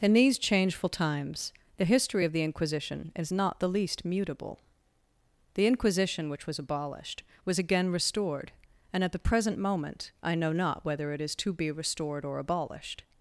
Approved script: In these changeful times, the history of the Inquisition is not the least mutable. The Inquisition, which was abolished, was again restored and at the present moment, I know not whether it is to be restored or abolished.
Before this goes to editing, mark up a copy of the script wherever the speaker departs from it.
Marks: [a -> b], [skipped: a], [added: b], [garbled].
In these changeful times, the history of the Inquisition is not the least mutable. The Inquisition, which was abolished, was again restored and at the present moment, I know not whether it is to be restored or abolished.